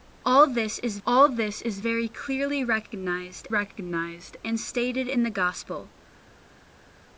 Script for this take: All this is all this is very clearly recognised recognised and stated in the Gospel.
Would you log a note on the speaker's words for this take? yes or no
no